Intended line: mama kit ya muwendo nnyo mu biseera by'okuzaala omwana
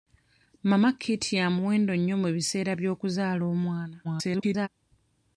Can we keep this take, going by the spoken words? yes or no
no